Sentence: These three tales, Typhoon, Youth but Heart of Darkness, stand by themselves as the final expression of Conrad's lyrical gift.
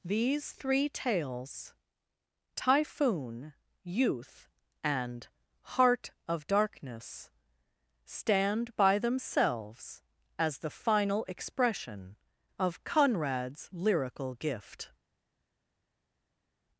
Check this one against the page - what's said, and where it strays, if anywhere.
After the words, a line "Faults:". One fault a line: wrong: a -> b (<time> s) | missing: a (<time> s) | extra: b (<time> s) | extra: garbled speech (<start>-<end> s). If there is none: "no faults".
These three tales, Typhoon, Youth and Heart of Darkness, stand by themselves as the final expression of Conrad's lyrical gift.
Faults:
wrong: but -> and (4.8 s)